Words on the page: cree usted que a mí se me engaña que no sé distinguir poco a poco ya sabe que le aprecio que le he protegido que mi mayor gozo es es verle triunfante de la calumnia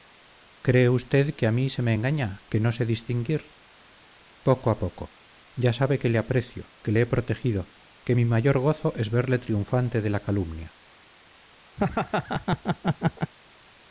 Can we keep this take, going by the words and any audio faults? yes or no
no